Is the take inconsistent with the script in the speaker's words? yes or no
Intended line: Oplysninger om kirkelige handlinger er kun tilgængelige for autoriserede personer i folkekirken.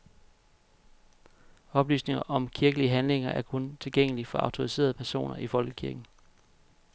no